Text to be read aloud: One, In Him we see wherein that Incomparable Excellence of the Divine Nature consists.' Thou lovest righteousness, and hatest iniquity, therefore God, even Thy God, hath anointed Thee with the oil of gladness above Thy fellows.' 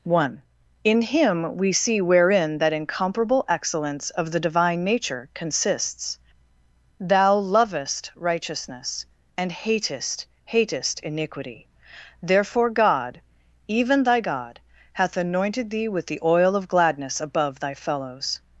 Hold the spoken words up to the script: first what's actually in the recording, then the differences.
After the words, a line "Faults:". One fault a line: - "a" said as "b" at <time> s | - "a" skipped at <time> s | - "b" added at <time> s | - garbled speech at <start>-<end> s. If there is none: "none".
One, In Him we see wherein that Incomparable Excellence of the Divine Nature consists.' Thou lovest righteousness, and hatest hatest iniquity, therefore God, even Thy God, hath anointed Thee with the oil of gladness above Thy fellows.'
Faults:
- "hatest" added at 10.4 s